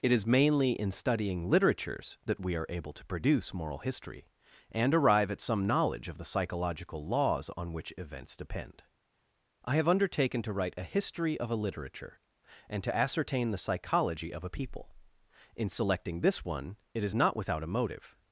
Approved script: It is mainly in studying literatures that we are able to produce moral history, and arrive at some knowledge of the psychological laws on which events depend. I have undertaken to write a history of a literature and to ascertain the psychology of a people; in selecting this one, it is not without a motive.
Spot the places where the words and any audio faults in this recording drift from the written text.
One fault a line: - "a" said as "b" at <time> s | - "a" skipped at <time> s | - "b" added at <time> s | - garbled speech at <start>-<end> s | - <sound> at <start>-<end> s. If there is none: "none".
none